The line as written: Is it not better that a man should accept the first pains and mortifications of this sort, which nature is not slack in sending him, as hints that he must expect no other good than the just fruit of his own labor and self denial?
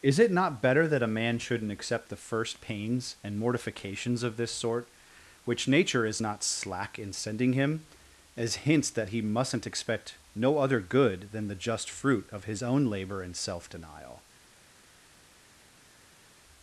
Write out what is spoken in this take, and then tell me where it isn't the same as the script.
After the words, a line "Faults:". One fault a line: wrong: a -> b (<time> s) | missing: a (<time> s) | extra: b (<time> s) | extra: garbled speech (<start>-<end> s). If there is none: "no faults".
Is it not better that a man shouldn't accept the first pains and mortifications of this sort, which nature is not slack in sending him, as hints that he mustn't expect no other good than the just fruit of his own labor and self denial?
Faults:
wrong: should -> shouldn't (1.4 s)
wrong: must -> mustn't (9.2 s)